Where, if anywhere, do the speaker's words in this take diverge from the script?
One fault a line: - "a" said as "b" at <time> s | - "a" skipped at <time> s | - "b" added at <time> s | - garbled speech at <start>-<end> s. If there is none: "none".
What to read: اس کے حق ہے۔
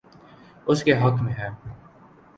- "میں" added at 1.2 s